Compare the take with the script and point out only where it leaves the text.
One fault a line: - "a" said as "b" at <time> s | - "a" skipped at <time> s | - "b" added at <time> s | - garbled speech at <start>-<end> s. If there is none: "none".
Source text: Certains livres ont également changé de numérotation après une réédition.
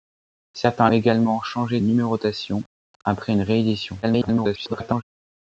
- "livres ont" skipped at 0.9 s
- "de" skipped at 1.8 s
- garbled speech at 4.0-5.0 s